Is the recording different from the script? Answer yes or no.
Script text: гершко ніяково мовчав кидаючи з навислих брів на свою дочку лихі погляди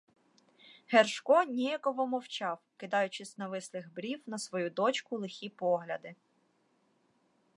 no